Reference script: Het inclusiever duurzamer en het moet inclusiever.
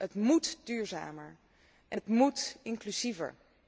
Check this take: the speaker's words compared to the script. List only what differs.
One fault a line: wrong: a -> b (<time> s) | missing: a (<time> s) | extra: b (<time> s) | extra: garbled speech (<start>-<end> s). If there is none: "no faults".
wrong: inclusiever -> moet (0.1 s)